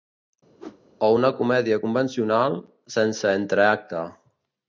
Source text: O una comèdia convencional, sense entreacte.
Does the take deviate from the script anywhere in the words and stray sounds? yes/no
yes